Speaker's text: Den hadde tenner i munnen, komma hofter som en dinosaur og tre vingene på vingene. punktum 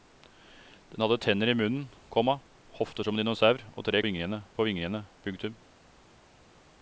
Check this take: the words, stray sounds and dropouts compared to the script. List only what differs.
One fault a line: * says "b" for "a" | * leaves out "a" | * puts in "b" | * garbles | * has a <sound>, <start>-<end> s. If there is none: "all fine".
all fine